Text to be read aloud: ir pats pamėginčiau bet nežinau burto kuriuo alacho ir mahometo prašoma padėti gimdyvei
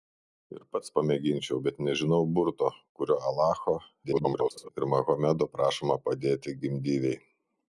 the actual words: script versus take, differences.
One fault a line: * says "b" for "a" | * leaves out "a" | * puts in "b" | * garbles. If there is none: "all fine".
* garbles